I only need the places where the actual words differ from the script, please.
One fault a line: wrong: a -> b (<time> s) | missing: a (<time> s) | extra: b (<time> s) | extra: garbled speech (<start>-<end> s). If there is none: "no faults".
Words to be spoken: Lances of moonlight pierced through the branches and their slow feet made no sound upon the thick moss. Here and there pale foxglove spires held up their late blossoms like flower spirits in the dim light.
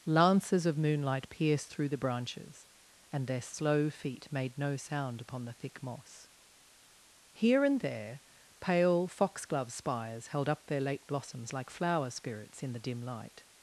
no faults